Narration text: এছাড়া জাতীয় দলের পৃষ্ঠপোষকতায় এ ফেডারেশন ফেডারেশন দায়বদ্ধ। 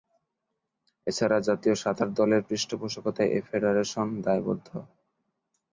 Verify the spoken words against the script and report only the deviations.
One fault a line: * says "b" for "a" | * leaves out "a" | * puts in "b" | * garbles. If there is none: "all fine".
* puts in "সাঁতার"
* leaves out "ফেডারেশন"